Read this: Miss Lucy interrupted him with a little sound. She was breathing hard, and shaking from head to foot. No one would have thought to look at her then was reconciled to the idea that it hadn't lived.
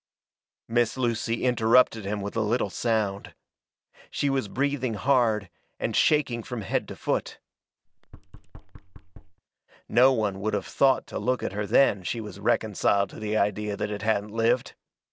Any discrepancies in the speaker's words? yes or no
yes